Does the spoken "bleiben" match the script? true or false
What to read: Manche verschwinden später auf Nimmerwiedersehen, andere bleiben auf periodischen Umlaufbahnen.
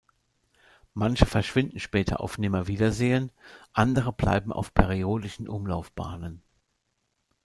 true